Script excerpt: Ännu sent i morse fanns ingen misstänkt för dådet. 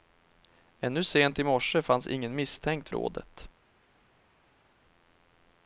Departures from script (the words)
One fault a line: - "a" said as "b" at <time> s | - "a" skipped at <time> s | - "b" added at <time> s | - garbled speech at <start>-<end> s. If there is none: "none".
- "för" skipped at 2.9 s